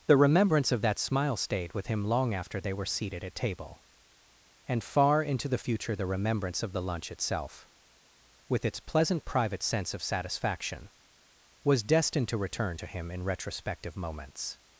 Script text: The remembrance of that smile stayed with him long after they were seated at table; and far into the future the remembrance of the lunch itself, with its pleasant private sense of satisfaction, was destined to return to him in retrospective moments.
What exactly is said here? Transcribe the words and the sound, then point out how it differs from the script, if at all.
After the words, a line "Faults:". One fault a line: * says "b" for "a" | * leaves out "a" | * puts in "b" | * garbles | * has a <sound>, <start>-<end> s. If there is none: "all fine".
The remembrance of that smile stayed with him long after they were seated at table; and far into the future the remembrance of the lunch itself, with its pleasant private sense of satisfaction, was destined to return to him in retrospective moments.
Faults:
all fine